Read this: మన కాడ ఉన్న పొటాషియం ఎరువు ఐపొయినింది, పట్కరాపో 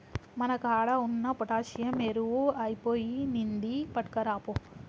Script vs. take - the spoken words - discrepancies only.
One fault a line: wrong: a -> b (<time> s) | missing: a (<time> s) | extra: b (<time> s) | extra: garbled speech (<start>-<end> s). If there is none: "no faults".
no faults